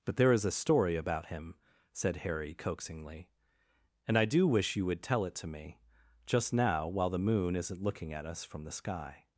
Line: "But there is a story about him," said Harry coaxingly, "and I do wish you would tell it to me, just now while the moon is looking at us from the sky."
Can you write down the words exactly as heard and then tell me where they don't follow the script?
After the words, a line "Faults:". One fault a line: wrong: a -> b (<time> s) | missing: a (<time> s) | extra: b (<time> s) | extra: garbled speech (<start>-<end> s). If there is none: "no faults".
"But there is a story about him," said Harry coaxingly, "and I do wish you would tell it to me, just now while the moon isn't looking at us from the sky."
Faults:
wrong: is -> isn't (7.5 s)